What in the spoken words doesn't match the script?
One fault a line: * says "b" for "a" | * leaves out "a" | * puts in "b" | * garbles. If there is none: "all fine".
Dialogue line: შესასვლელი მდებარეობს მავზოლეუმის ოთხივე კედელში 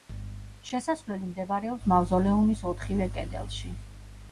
all fine